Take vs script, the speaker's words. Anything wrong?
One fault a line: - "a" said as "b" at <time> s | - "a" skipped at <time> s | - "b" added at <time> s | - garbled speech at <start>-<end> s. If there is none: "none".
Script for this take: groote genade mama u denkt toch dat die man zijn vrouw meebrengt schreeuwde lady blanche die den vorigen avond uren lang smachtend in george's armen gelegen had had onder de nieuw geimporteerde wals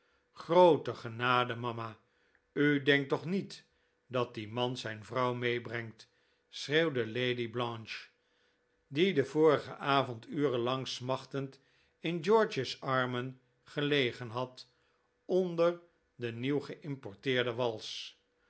- "niet" added at 3.2 s
- "had" skipped at 14.7 s